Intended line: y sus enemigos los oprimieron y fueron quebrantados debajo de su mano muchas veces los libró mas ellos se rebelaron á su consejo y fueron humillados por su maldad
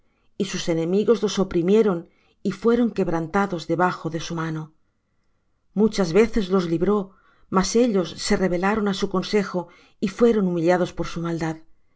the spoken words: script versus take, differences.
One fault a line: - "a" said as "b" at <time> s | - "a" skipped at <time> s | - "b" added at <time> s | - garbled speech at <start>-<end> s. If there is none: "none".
none